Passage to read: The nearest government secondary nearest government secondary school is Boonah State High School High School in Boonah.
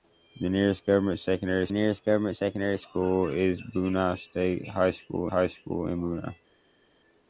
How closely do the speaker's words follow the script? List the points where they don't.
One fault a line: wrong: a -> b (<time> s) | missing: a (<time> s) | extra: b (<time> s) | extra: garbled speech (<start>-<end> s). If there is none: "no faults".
no faults